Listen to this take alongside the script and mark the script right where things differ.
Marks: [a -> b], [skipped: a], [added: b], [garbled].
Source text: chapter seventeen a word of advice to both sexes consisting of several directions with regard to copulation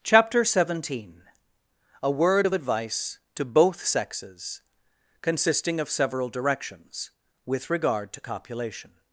chapter seventeen a word of advice to both sexes consisting of several directions with regard to copulation